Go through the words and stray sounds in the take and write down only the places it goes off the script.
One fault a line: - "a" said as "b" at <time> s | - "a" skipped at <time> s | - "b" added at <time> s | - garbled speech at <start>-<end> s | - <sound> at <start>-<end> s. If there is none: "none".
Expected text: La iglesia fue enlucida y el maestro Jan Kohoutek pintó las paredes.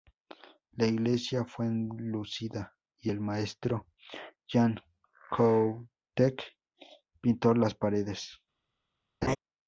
- laugh at 9.2-9.4 s